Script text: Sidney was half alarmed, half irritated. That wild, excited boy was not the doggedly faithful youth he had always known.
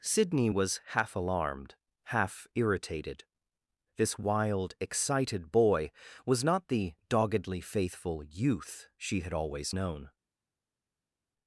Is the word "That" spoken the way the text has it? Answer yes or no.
no